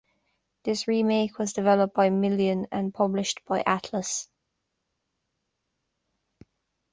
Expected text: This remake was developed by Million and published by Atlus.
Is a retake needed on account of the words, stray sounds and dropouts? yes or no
no